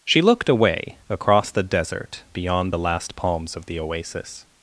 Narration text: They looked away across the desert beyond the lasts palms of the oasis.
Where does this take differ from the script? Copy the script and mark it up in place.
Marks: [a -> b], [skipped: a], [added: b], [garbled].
[They -> She] looked away across the desert beyond the [lasts -> last] palms of the oasis.